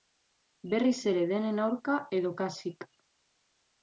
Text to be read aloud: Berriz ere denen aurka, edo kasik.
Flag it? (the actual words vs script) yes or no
no